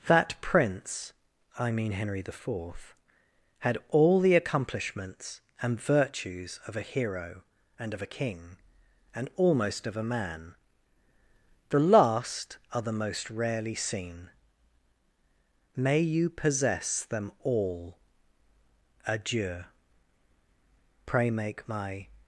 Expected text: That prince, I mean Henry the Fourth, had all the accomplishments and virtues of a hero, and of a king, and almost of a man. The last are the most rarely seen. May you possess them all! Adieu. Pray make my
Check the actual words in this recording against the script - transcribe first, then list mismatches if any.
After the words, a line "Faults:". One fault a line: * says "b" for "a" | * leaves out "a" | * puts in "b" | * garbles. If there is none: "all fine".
That prince, I mean Henry the Fourth, had all the accomplishments and virtues of a hero, and of a king, and almost of a man. The last are the most rarely seen. May you possess them all! Adieu. Pray make my
Faults:
all fine